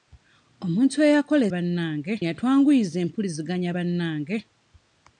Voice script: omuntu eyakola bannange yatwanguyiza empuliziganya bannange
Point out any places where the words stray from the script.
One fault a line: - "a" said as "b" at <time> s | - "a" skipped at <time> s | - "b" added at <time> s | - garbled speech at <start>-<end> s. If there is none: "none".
none